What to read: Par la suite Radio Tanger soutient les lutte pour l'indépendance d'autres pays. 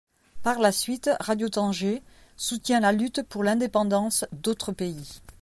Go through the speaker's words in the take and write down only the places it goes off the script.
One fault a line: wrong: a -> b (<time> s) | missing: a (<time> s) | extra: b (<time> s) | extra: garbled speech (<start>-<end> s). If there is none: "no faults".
wrong: les -> la (2.8 s)